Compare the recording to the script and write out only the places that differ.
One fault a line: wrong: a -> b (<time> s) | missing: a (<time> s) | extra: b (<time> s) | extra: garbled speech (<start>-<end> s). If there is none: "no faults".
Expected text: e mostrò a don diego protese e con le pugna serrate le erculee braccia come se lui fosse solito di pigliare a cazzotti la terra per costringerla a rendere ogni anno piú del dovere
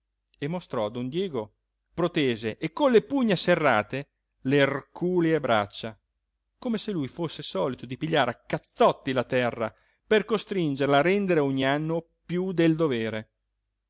no faults